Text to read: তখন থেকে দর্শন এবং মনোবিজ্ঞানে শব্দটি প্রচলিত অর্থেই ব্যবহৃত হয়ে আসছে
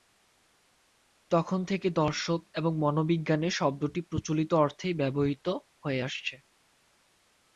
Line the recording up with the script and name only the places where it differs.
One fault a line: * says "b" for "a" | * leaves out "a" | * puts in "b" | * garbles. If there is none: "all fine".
all fine